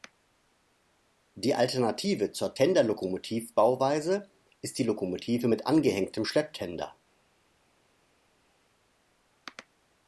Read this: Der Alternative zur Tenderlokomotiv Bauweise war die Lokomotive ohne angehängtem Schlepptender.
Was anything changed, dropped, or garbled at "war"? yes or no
yes